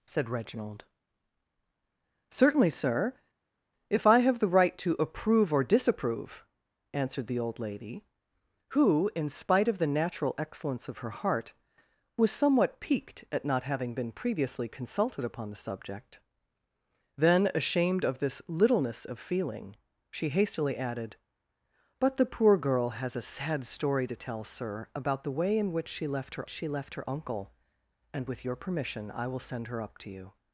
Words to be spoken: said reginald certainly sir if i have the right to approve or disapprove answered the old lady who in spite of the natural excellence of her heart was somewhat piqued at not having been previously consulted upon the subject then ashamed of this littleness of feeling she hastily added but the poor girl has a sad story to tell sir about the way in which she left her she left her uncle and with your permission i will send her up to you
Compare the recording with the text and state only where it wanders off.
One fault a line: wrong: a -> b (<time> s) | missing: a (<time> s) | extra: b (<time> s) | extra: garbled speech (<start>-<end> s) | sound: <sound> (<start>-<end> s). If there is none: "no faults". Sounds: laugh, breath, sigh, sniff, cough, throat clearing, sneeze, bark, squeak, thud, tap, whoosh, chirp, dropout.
no faults